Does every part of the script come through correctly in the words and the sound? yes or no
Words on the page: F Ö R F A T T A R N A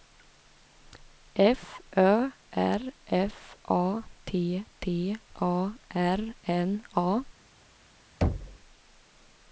no